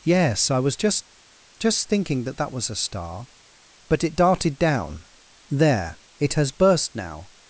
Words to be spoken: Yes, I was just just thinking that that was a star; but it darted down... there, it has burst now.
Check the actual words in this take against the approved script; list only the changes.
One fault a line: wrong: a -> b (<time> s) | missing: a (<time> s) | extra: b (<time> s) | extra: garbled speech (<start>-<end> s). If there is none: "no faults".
no faults